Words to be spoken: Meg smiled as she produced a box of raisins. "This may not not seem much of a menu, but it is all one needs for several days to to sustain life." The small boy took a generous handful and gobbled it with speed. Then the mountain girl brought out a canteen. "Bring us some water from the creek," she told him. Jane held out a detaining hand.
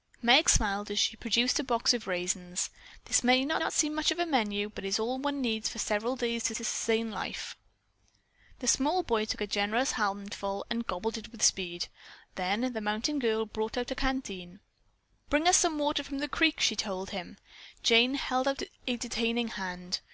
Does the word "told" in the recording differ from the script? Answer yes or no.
no